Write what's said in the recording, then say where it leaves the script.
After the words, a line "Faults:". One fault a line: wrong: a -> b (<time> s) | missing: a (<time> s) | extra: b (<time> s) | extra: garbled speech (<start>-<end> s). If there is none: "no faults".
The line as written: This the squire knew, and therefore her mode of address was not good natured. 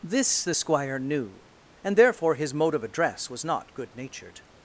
This the squire knew, and therefore his mode of address was not good natured.
Faults:
wrong: her -> his (2.3 s)